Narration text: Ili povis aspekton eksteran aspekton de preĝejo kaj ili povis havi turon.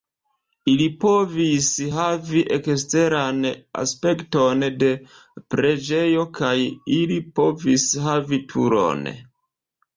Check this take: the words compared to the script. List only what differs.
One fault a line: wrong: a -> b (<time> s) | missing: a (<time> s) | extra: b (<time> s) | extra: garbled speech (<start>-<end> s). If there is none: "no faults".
wrong: aspekton -> havi (1.9 s)